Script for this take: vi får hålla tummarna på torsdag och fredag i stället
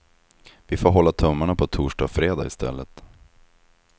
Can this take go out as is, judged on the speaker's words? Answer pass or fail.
pass